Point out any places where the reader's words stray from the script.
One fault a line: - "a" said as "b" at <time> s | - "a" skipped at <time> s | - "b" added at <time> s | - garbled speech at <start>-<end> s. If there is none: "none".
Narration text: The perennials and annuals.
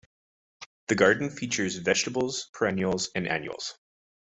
- "garden features vegetables" added at 0.9 s